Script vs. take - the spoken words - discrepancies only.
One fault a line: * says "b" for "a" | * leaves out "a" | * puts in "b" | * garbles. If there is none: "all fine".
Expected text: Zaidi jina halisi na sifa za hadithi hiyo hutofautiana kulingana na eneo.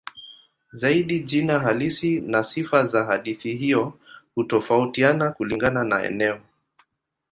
all fine